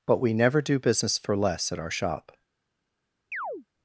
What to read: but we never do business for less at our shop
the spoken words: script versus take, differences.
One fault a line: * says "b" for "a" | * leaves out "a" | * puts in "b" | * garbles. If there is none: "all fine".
all fine